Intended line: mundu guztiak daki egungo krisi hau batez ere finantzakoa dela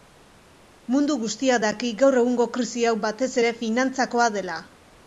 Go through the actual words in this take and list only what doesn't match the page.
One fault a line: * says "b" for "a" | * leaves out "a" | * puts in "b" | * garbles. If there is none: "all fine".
* puts in "gaur"